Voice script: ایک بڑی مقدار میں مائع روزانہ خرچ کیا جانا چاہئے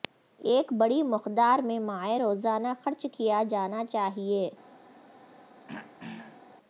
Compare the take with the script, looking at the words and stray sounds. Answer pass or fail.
fail